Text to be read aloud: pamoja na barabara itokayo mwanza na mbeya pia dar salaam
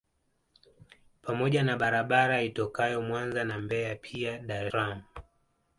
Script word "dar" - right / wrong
right